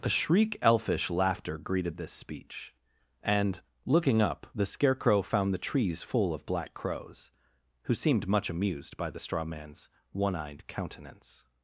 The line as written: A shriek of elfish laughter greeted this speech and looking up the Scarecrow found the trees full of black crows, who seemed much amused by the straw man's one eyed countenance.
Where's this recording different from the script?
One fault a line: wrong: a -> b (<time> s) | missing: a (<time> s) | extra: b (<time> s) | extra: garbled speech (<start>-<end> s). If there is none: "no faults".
missing: of (0.6 s)